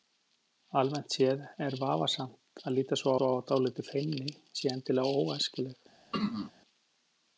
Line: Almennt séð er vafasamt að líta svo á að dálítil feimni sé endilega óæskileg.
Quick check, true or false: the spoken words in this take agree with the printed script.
false